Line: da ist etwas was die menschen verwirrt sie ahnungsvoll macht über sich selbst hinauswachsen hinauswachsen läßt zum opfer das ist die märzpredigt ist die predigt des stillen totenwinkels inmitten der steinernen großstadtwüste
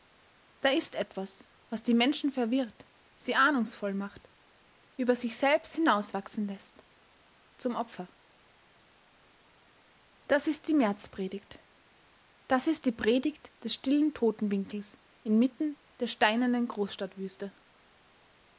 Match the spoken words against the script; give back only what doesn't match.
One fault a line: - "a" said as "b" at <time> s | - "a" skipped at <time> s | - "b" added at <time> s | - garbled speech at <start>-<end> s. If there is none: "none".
- "hinauswachsen" skipped at 6.5 s
- "das" added at 12.5 s